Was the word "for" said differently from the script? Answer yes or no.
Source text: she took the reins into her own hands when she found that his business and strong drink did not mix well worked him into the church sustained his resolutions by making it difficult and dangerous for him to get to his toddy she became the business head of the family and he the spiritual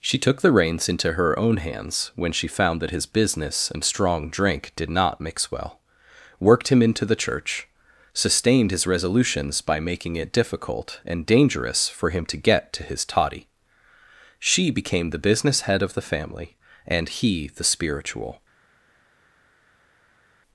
no